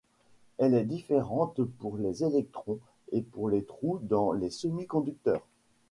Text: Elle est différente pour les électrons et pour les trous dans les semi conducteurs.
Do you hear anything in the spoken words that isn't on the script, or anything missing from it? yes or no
no